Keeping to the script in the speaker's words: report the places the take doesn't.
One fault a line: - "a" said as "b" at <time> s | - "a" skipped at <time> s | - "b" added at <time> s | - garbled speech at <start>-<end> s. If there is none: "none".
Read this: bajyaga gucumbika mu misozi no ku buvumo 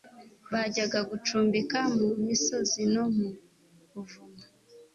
- "ku" said as "mu" at 3.1 s